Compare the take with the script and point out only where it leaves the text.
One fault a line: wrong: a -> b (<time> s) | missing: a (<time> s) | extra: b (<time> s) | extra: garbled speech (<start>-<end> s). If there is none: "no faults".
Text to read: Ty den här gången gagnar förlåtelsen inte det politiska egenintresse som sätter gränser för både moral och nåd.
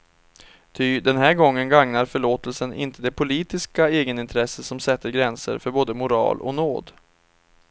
no faults